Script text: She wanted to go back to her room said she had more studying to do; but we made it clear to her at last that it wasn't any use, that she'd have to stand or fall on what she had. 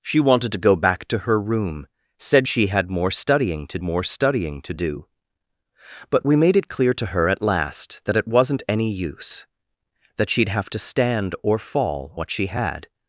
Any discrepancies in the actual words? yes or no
yes